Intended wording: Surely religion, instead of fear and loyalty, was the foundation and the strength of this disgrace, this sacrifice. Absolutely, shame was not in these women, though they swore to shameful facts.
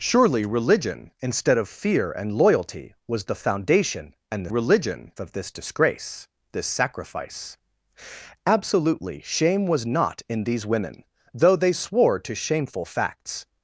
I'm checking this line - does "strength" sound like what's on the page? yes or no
no